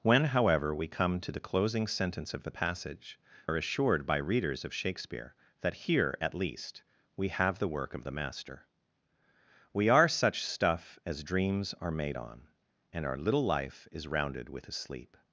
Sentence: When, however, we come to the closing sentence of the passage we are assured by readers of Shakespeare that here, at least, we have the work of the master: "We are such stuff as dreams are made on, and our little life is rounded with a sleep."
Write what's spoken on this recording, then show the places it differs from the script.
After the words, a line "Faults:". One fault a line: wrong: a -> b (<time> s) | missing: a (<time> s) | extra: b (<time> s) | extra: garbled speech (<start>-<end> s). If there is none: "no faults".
When, however, we come to the closing sentence of the passage are assured by readers of Shakespeare that here, at least, we have the work of the master: "We are such stuff as dreams are made on, and our little life is rounded with a sleep."
Faults:
missing: we (3.2 s)